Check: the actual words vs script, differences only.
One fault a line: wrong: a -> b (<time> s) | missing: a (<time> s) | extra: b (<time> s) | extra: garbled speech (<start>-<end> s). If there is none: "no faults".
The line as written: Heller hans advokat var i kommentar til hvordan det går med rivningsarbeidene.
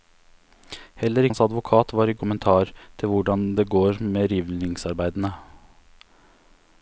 no faults